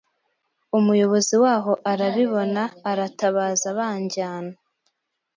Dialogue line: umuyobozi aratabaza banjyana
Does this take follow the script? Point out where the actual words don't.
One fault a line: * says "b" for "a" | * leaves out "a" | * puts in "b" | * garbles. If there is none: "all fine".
* puts in "waho arabibona"